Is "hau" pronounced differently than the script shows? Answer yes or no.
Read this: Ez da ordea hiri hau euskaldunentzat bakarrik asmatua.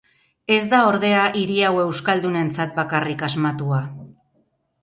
no